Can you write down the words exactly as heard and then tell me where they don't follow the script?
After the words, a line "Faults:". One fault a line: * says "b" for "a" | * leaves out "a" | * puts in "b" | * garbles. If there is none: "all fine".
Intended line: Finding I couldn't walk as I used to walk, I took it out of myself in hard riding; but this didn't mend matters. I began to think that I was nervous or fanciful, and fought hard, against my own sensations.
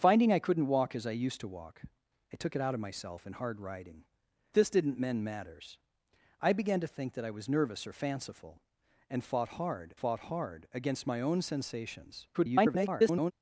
Finding I couldn't walk as I used to walk, I took it out of myself in hard riding; this didn't mend matters. I began to think that I was nervous or fanciful, and fought hard fought hard, against my own sensations. [garbled]
Faults:
* leaves out "but"
* puts in "fought hard"
* garbles